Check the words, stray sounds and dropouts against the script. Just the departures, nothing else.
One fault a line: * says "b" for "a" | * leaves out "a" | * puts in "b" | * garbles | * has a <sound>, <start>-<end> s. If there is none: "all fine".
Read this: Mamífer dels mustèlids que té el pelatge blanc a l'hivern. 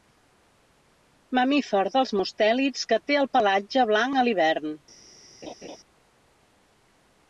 * has a laugh, 5.4-5.8 s